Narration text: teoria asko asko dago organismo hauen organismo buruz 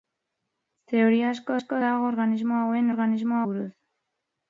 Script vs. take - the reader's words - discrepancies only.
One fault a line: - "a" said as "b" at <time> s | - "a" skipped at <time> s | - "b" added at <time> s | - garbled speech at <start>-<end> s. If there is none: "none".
none